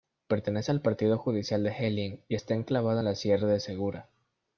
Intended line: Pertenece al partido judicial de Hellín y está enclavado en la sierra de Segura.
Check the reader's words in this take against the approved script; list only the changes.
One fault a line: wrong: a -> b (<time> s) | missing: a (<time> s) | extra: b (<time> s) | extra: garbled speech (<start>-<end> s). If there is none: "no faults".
no faults